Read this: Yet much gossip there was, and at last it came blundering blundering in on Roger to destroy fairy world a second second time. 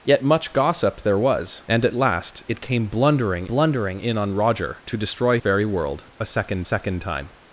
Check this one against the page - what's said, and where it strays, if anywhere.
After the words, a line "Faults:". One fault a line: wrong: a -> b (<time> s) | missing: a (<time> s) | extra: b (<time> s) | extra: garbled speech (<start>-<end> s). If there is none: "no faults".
Yet much gossip there was, and at last it came blundering blundering in on Roger to destroy fairy world a second second time.
Faults:
no faults